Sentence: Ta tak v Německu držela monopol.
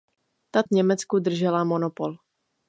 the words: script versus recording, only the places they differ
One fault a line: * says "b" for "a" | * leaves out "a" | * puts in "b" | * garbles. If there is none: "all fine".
* leaves out "tak"